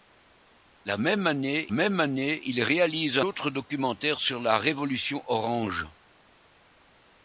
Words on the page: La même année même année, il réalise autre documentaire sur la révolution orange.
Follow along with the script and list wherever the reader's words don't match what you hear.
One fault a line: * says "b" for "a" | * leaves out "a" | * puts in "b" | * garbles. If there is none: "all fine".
all fine